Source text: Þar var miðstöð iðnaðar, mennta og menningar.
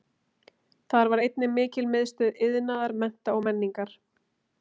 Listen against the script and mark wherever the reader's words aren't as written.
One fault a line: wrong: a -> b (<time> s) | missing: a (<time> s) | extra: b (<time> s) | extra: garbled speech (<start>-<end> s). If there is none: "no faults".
extra: einnig mikil (1.2 s)